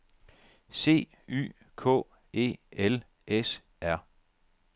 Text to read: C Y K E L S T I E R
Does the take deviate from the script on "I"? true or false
true